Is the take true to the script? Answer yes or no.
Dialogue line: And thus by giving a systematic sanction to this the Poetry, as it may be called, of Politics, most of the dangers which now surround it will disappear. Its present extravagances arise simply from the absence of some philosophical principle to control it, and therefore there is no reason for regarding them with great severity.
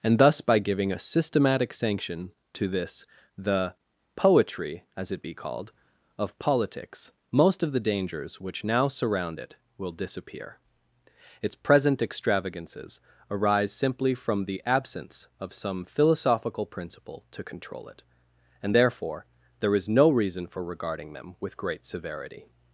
no